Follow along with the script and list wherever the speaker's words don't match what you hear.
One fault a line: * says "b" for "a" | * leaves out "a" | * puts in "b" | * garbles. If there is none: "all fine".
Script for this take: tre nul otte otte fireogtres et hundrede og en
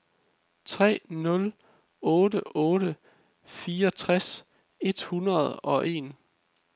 all fine